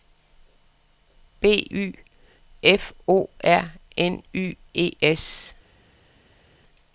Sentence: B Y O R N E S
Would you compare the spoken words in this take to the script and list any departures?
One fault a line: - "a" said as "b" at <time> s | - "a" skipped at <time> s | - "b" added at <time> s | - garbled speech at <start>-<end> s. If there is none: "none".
- "F" added at 2.6 s
- "Y" added at 4.3 s